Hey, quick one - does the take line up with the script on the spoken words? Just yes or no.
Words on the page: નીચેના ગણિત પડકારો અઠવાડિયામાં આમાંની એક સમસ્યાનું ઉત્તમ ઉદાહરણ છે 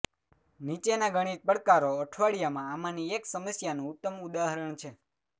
yes